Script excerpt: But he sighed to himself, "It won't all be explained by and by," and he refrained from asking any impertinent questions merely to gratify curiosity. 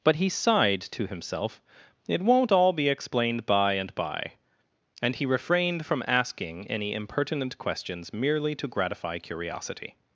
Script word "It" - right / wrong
right